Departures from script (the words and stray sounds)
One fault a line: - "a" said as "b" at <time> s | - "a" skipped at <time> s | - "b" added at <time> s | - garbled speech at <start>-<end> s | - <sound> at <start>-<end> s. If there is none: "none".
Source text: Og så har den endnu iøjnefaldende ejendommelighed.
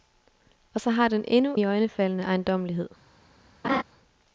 - laugh at 3.6-3.8 s